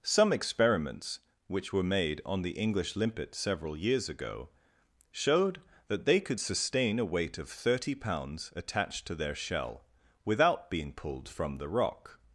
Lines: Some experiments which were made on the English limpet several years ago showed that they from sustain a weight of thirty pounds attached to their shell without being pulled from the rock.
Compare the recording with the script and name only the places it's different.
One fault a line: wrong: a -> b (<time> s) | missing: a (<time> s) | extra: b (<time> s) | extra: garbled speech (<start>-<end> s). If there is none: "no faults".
wrong: from -> could (6.2 s)